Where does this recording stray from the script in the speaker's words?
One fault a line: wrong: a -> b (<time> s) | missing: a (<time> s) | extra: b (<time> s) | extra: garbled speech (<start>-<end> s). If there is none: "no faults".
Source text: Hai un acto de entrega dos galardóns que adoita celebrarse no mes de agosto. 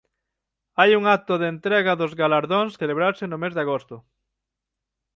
missing: que adoita (2.7 s)